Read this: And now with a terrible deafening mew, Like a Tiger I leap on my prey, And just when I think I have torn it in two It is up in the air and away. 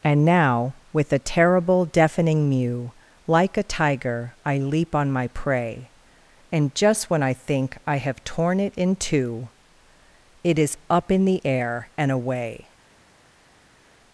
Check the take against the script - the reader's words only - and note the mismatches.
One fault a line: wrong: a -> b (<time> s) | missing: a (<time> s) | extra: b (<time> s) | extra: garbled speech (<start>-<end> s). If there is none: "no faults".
no faults